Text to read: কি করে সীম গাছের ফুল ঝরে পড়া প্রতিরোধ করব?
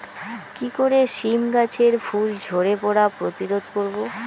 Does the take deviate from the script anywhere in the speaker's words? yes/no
no